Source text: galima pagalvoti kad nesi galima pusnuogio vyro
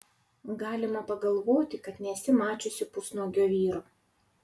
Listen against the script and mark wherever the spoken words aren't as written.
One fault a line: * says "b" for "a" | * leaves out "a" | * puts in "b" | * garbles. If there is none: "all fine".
* says "mačiusi" for "galima"